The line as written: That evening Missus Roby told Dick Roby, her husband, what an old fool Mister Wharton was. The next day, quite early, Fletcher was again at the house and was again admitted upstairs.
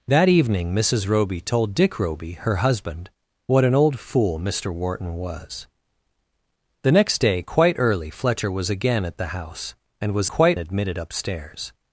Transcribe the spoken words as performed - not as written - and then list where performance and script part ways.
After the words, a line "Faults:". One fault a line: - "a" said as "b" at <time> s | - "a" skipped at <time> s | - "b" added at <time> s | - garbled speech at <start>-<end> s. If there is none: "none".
That evening Missus Roby told Dick Roby, her husband, what an old fool Mister Wharton was. The next day, quite early, Fletcher was again at the house and was quite admitted upstairs.
Faults:
- "again" said as "quite" at 10.2 s